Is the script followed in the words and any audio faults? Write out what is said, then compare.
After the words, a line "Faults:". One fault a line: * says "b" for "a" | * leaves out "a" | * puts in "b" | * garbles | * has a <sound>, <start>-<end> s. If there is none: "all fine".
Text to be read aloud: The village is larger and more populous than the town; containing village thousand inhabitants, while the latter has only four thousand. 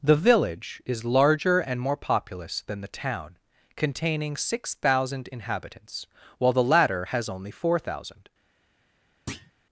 The village is larger and more populous than the town; containing six thousand inhabitants, while the latter has only four thousand.
Faults:
* says "six" for "village"
* has a thud, 9.3-9.5 s